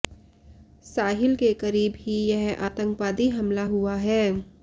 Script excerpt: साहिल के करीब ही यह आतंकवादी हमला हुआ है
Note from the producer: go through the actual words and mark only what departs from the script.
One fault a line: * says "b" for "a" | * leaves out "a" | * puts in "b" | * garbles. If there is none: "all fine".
all fine